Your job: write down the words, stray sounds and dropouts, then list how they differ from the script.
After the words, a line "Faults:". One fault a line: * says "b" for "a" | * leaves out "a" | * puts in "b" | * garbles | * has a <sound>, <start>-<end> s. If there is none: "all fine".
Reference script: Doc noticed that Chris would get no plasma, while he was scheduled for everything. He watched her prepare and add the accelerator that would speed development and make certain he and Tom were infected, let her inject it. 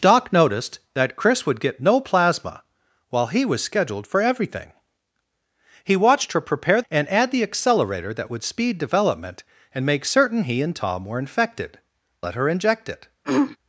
Doc noticed that Chris would get no plasma, while he was scheduled for everything. He watched her prepare and add the accelerator that would speed development and make certain he and Tom were infected, let her inject it.
Faults:
* has a throat clearing, 13.2-13.6 s